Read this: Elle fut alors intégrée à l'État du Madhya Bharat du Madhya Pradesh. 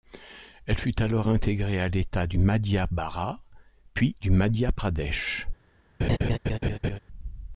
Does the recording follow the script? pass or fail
fail